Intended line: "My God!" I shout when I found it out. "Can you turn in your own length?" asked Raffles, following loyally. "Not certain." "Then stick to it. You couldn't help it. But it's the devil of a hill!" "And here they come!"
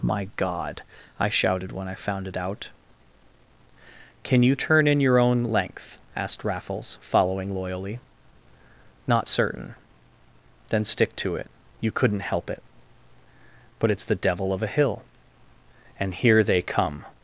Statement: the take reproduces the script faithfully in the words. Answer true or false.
false